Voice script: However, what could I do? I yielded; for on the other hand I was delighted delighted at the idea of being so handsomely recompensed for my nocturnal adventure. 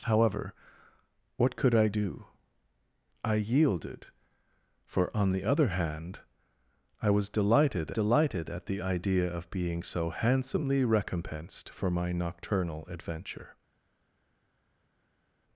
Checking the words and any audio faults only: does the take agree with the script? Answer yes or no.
yes